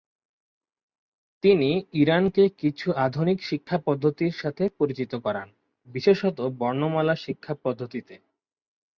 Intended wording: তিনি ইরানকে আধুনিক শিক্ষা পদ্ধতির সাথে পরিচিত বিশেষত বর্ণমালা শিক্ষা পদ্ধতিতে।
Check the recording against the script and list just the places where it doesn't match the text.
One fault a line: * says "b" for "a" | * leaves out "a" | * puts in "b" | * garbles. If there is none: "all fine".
* puts in "কিছু"
* puts in "করান"